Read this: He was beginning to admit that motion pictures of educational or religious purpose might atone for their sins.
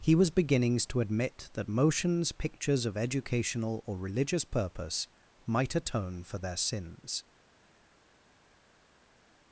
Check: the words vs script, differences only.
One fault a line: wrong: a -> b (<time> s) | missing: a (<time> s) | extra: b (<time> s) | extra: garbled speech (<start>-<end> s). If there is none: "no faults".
wrong: beginning -> beginnings (0.3 s)
wrong: motion -> motions (1.7 s)